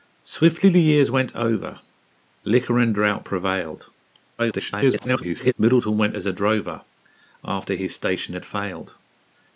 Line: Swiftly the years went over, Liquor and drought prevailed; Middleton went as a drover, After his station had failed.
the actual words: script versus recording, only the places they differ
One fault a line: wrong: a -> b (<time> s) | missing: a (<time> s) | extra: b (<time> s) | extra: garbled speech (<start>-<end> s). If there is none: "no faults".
extra: garbled speech (4.4-5.5 s)